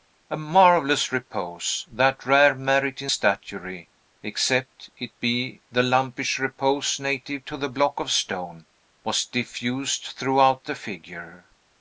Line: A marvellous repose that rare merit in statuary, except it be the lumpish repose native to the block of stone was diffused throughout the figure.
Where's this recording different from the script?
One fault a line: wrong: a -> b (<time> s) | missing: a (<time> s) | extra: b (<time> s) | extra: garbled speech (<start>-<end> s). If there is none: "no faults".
no faults